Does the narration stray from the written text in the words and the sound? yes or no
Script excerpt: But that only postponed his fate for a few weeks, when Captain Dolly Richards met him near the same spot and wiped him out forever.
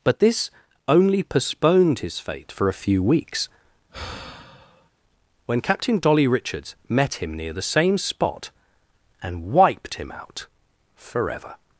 yes